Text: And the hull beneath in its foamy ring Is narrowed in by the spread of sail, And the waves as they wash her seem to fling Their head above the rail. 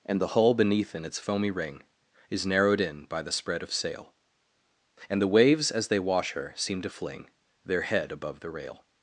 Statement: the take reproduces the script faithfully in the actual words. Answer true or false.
true